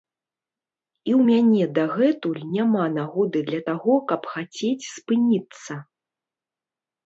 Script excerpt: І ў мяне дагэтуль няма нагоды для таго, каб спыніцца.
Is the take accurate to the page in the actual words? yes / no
no